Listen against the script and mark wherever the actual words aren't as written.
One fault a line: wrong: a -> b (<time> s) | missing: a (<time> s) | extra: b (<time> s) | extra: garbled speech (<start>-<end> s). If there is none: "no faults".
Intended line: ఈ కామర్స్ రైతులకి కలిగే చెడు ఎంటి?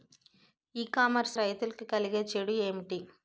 no faults